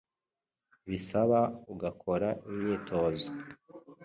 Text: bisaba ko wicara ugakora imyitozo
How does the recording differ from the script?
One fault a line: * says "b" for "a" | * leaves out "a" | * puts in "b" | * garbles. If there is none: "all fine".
* leaves out "ko wicara"